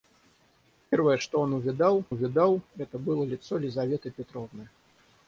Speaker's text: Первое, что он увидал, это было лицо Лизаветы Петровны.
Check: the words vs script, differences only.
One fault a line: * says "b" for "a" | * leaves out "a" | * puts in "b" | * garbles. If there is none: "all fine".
* puts in "увидал"